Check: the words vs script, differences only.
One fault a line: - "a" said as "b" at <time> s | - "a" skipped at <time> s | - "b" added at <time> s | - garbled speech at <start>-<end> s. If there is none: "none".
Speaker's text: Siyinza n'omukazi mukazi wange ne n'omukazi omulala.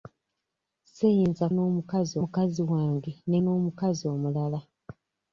none